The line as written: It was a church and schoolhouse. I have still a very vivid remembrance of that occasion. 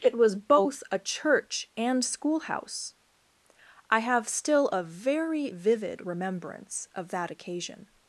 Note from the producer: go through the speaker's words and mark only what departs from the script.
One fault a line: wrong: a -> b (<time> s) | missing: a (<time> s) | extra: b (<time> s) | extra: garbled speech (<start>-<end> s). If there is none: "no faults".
extra: both (0.3 s)